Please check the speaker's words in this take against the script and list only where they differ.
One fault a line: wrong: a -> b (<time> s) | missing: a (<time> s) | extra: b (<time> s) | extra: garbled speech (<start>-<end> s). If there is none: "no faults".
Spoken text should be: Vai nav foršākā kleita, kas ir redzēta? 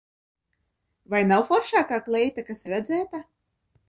no faults